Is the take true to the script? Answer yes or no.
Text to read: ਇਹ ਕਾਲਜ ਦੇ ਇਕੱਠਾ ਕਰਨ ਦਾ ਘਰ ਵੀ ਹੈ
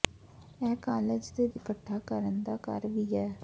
yes